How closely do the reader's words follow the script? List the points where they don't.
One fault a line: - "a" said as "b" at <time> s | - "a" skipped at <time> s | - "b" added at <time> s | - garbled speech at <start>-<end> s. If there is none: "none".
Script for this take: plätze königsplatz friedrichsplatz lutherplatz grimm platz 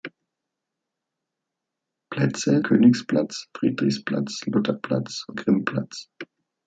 none